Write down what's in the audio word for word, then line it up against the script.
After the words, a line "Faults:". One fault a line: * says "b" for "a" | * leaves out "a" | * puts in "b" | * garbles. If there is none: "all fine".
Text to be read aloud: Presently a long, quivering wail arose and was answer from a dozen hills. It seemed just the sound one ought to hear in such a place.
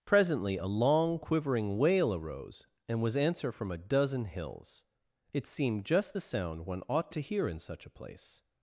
Presently a long, quivering wail arose and was answer from a dozen hills. It seemed just the sound one ought to hear in such a place.
Faults:
all fine